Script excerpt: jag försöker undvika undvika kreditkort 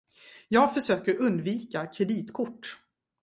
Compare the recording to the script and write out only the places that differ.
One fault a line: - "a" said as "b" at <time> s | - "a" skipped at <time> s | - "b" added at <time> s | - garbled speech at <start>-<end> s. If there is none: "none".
- "undvika" skipped at 1.9 s